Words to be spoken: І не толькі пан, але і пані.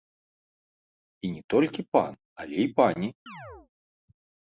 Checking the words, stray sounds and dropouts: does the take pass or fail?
fail